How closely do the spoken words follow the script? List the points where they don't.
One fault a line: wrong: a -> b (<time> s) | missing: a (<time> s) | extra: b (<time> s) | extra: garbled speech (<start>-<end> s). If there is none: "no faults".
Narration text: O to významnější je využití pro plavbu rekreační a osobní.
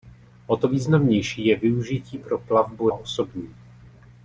missing: rekreační a (2.9 s)